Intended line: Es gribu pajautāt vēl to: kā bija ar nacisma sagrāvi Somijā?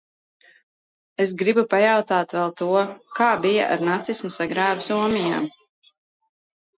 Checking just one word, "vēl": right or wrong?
right